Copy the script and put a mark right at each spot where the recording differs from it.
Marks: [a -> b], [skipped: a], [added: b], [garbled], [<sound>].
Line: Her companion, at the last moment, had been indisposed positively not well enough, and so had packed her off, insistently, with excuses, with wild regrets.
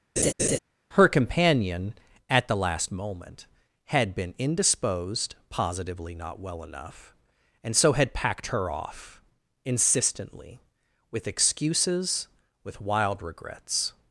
[laugh] Her companion, at the last moment, had been indisposed positively not well enough, and so had packed her off, insistently, with excuses, with wild regrets.